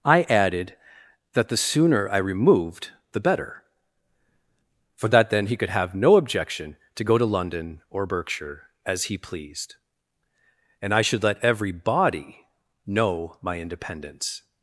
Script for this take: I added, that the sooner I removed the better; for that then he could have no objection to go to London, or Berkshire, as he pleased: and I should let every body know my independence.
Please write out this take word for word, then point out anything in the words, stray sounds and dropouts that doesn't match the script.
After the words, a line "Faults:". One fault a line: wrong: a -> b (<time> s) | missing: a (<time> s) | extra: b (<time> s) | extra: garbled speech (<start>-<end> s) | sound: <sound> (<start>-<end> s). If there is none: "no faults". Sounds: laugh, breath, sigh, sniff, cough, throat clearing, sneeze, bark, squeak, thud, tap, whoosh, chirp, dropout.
I added, that the sooner I removed the better; for that then he could have no objection to go to London, or Berkshire, as he pleased: and I should let every body know my independence.
Faults:
no faults